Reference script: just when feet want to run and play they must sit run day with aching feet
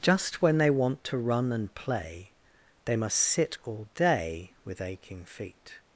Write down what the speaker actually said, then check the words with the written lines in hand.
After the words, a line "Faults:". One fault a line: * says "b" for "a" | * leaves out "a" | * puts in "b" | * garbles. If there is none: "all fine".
just when they want to run and play they must sit all day with aching feet
Faults:
* says "they" for "feet"
* says "all" for "run"